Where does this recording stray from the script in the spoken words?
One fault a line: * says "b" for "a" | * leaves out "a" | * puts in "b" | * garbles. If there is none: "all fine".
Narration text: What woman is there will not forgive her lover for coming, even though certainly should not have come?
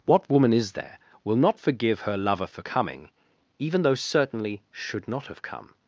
all fine